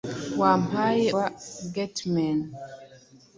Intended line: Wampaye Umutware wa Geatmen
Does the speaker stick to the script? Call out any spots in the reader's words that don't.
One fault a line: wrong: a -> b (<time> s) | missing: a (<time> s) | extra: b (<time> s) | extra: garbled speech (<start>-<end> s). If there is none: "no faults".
missing: Umutware (1.1 s)